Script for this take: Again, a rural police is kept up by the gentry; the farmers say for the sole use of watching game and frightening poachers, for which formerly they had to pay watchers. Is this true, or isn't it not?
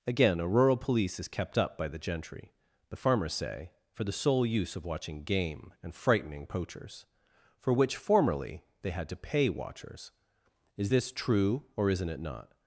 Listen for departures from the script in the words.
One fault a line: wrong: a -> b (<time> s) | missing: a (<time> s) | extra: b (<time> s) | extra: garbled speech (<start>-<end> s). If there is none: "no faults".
no faults